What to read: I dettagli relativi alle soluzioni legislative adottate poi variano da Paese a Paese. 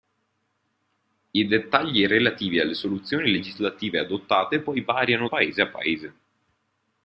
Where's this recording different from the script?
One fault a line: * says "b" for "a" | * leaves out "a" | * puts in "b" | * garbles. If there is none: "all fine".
* leaves out "da"